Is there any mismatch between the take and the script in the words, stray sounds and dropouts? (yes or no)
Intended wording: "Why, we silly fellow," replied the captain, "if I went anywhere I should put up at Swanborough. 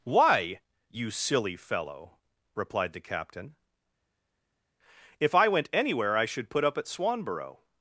yes